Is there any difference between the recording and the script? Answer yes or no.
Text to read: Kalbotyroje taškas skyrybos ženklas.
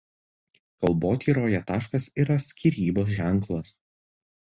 yes